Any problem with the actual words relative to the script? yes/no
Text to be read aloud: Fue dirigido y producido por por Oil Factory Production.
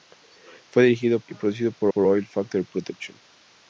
no